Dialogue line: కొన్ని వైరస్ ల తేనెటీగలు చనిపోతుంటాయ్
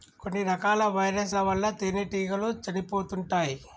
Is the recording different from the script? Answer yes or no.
yes